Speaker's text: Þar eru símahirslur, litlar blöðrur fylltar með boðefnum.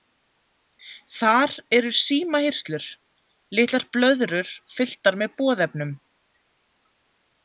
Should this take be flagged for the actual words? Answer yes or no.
no